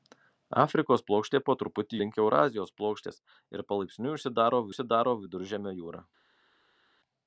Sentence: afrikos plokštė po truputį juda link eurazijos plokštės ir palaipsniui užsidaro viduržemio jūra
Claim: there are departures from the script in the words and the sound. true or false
true